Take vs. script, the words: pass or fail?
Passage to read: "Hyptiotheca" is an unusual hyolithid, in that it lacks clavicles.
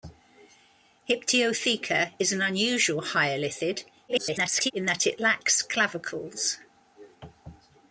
fail